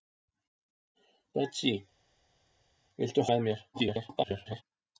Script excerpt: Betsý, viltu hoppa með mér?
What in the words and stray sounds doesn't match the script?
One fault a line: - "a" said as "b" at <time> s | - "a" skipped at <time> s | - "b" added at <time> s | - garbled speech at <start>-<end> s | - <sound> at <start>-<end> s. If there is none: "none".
- "hoppa" skipped at 3.3 s
- garbled speech at 3.7-4.6 s